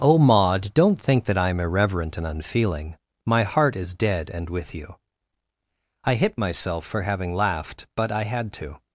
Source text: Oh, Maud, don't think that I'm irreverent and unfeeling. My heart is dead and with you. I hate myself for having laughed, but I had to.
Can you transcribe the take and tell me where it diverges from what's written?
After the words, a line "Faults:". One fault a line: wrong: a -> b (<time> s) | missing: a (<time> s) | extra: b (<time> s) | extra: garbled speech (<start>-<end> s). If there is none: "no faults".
Oh, Maud, don't think that I'm irreverent and unfeeling. My heart is dead and with you. I hit myself for having laughed, but I had to.
Faults:
wrong: hate -> hit (6.2 s)